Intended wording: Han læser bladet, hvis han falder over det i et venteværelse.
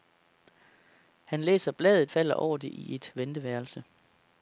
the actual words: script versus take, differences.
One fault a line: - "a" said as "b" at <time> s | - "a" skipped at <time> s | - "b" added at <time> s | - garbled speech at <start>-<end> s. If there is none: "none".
- "hvis han" skipped at 2.1 s